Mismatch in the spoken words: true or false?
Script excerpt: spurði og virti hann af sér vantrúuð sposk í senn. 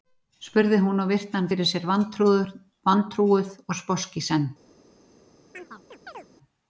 true